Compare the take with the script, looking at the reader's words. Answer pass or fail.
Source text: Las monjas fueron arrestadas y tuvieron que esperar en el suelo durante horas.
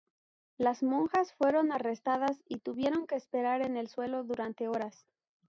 pass